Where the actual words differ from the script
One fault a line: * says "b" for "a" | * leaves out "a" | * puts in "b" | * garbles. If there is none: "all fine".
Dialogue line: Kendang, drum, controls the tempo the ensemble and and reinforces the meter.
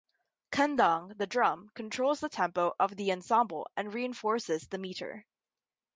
* puts in "the"
* puts in "of"
* leaves out "and"